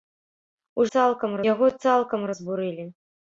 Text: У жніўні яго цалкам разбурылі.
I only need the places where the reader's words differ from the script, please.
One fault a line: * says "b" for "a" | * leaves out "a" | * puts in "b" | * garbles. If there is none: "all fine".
* says "цалкам" for "жніўні"